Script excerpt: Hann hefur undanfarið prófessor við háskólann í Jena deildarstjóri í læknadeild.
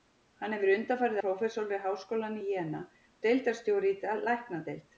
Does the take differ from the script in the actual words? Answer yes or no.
no